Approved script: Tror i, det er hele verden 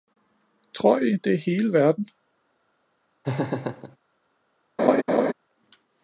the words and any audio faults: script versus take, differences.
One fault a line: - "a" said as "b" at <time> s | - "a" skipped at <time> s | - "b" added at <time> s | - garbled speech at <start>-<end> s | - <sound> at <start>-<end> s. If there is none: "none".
- laugh at 3.2-4.0 s
- laugh at 4.8-5.3 s